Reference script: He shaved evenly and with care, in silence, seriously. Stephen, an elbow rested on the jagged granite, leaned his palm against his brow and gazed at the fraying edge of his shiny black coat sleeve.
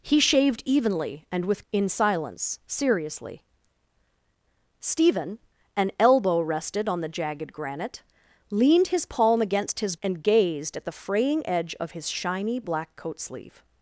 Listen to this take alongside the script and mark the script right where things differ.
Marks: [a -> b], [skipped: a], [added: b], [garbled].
He shaved evenly and with [skipped: care,] in silence, seriously. Stephen, an elbow rested on the jagged granite, leaned his palm against his [skipped: brow] and gazed at the fraying edge of his shiny black coat sleeve.